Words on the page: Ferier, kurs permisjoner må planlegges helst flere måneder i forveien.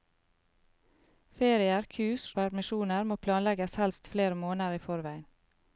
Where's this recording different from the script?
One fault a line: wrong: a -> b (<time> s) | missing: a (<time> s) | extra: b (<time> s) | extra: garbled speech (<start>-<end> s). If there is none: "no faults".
no faults